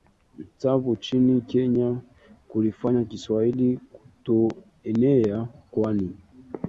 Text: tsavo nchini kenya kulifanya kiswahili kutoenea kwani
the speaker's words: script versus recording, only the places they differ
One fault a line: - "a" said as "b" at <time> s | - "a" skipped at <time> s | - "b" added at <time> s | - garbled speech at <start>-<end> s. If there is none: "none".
none